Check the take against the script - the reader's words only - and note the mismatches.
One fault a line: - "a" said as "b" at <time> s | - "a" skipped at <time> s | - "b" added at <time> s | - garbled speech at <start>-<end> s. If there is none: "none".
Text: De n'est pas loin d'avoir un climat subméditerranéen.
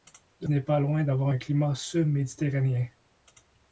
none